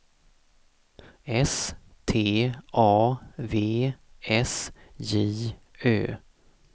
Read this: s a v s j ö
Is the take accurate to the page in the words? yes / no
no